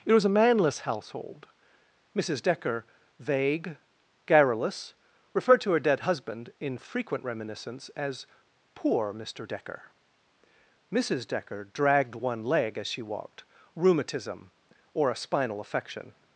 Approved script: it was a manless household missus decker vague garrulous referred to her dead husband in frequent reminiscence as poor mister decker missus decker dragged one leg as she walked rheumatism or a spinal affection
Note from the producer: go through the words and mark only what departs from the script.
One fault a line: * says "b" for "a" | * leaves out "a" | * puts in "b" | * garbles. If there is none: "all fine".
all fine